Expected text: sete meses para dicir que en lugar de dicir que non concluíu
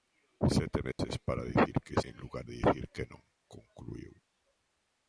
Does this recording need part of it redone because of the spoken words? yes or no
no